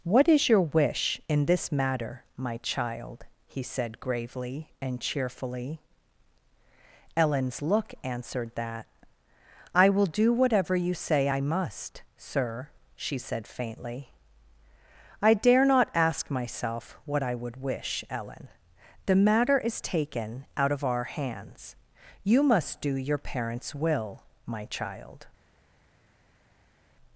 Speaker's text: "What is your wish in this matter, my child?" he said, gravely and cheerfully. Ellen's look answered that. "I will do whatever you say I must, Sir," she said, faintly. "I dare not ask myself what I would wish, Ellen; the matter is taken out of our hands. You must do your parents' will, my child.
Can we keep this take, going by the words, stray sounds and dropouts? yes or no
yes